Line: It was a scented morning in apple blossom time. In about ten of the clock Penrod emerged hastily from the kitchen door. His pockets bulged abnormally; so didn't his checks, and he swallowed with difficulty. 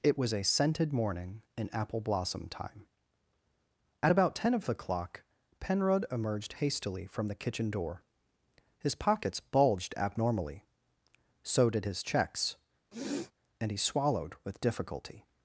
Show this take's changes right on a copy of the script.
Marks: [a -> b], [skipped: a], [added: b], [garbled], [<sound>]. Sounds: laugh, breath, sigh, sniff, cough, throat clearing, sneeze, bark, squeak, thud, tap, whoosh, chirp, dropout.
It was a scented morning in apple blossom time. [In -> At] about ten of the clock Penrod emerged hastily from the kitchen door. His pockets bulged abnormally; so [didn't -> did] his checks, [sniff] and he swallowed with difficulty.